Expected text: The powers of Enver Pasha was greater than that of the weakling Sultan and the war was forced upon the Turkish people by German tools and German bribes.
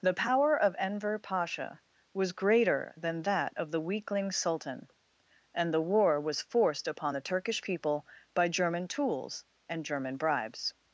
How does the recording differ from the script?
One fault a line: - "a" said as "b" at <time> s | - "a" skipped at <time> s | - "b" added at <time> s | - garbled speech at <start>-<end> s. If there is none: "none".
- "powers" said as "power" at 0.1 s